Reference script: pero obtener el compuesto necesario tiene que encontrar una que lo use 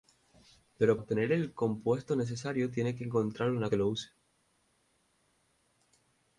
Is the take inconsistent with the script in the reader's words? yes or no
no